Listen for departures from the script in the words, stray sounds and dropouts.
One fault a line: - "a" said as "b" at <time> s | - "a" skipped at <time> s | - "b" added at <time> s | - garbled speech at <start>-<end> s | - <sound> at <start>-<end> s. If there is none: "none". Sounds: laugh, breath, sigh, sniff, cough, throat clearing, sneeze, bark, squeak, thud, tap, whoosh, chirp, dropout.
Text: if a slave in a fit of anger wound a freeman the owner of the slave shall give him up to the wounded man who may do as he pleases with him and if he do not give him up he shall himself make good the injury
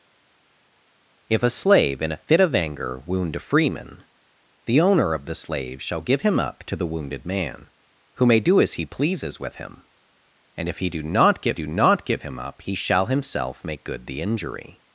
- "do not give" added at 11.5 s